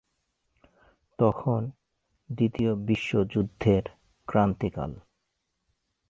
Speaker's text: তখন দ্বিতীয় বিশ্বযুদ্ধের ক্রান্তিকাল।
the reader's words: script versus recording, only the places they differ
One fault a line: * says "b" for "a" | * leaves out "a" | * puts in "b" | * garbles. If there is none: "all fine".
all fine